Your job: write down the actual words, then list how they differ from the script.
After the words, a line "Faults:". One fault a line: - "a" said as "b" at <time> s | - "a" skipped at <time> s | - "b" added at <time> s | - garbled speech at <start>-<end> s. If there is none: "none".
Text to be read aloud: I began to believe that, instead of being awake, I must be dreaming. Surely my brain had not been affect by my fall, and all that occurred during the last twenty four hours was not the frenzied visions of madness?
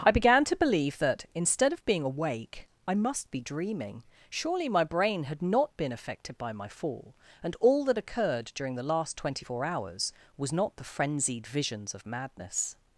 I began to believe that, instead of being awake, I must be dreaming. Surely my brain had not been affected by my fall, and all that occurred during the last twenty four hours was not the frenzied visions of madness?
Faults:
- "affect" said as "affected" at 5.9 s